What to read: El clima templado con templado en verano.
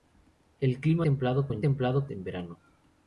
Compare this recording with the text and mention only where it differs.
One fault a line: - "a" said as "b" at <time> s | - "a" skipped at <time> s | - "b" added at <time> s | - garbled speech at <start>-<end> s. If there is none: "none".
none